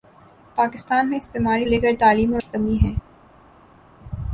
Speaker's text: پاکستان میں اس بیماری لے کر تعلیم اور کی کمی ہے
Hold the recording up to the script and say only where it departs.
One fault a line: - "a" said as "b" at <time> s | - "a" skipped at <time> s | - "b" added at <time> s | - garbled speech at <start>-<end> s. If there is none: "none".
none